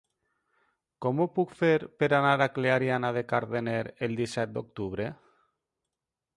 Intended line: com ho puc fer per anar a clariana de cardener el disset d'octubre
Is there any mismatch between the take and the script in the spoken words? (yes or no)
no